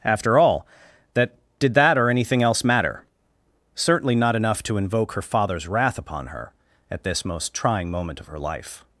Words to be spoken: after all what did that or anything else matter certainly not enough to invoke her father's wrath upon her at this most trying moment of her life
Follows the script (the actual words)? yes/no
no